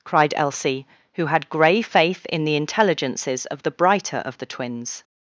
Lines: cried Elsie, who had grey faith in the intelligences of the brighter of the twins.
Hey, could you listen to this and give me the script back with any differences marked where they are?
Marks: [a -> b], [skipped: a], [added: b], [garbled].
cried Elsie, who had grey faith in the intelligences of the brighter of the twins.